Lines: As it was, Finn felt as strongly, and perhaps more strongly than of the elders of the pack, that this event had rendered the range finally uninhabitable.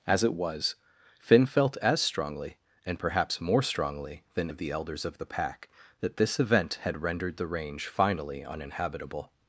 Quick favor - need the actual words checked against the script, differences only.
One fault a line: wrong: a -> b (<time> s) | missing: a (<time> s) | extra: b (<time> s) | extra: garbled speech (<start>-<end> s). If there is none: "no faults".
no faults